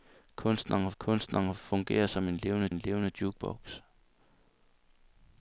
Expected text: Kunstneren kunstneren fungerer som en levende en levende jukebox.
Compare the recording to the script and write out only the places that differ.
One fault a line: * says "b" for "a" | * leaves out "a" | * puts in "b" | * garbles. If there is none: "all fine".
all fine